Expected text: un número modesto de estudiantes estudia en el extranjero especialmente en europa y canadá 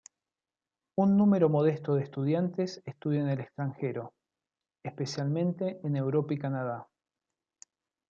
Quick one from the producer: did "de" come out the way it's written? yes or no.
yes